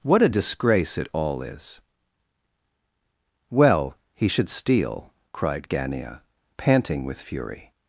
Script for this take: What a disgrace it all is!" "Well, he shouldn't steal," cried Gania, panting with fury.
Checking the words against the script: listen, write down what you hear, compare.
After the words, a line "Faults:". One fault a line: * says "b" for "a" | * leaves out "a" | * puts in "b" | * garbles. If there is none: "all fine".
What a disgrace it all is!" "Well, he should steal," cried Gania, panting with fury.
Faults:
* says "should" for "shouldn't"